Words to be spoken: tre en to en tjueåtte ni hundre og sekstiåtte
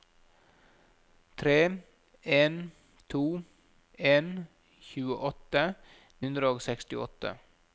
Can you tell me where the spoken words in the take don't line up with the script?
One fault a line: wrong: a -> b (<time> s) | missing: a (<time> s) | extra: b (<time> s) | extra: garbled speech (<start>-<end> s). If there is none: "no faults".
missing: ni (5.7 s)